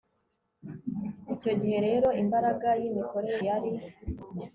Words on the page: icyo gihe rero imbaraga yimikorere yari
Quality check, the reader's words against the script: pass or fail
pass